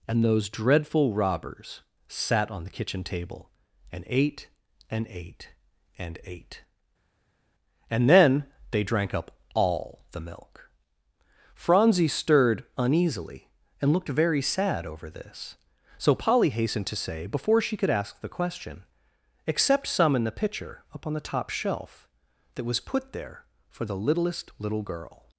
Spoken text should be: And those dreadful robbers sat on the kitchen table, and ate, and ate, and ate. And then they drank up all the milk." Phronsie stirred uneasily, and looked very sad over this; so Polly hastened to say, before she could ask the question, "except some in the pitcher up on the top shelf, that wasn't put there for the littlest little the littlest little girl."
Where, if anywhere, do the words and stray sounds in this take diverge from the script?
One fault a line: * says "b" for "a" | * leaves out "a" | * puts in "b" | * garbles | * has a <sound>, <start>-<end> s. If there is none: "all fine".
* says "was" for "wasn't"
* leaves out "the littlest little"